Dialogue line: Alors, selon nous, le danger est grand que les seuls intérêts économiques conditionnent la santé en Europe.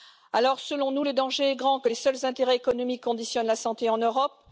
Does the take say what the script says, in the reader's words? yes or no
yes